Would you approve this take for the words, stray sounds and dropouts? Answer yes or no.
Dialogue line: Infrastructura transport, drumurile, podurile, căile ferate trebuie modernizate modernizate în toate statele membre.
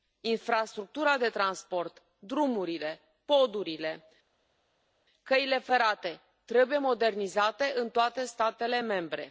no